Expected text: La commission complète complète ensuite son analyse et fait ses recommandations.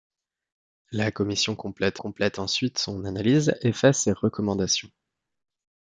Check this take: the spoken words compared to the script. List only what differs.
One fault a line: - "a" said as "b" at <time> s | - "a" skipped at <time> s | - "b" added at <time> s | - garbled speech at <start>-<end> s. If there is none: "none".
none